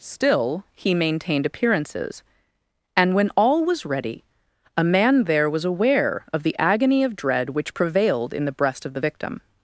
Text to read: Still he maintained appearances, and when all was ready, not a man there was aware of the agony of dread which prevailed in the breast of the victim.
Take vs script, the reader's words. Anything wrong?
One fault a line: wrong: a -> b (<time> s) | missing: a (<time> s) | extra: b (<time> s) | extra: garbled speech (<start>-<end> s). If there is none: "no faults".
missing: not (4.2 s)